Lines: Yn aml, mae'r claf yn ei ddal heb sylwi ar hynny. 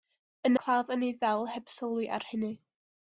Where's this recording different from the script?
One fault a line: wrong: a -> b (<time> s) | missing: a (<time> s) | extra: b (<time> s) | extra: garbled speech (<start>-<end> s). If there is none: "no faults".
missing: aml mae'r (0.6 s)